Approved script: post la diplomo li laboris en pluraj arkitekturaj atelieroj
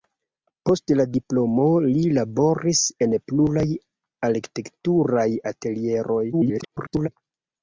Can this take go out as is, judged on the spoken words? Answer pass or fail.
fail